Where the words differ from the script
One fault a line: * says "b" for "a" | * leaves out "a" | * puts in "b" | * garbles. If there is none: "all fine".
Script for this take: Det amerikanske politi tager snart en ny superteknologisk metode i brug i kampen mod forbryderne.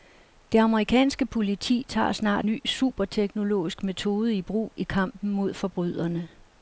* leaves out "en"